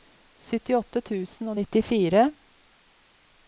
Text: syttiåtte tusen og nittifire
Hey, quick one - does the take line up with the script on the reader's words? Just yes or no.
yes